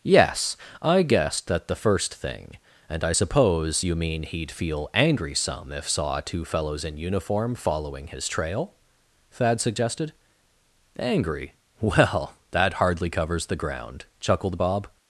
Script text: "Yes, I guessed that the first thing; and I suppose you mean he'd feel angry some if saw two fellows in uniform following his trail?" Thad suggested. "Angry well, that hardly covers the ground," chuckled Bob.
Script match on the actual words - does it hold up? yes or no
yes